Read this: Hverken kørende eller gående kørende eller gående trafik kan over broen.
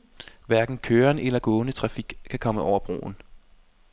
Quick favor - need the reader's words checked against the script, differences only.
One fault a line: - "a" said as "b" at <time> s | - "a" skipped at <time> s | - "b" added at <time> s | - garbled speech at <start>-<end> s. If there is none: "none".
- "kørende eller gående" skipped at 1.7 s
- "komme" added at 2.4 s